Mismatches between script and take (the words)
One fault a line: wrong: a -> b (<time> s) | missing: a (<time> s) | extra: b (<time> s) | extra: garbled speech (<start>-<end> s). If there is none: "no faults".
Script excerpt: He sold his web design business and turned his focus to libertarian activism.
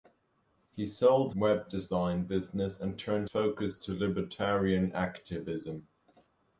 missing: his (1.4 s)
missing: his (3.3 s)